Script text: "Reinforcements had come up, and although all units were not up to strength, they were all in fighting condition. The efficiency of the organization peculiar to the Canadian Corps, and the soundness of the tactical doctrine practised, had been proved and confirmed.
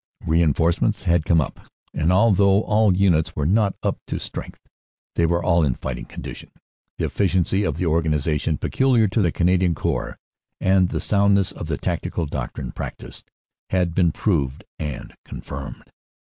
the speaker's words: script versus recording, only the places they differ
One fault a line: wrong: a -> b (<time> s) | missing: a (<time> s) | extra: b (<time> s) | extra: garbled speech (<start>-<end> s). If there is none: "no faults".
no faults